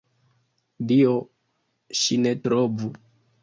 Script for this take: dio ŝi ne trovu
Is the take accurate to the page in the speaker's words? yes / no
yes